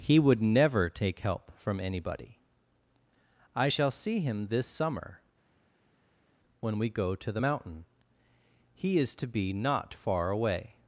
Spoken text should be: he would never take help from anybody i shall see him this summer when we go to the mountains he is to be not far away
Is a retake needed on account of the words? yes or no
yes